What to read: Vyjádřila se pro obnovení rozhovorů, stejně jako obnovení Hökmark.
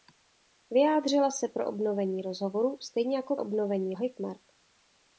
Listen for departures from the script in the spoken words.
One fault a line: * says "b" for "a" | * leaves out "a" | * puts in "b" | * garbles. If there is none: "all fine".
all fine